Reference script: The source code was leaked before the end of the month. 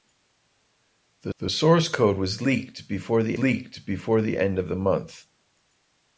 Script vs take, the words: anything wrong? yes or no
yes